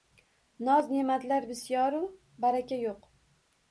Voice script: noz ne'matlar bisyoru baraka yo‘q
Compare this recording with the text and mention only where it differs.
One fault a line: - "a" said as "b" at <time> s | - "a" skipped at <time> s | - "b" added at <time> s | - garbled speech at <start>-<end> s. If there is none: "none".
none